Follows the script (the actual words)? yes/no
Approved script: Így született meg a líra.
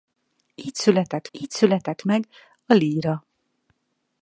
no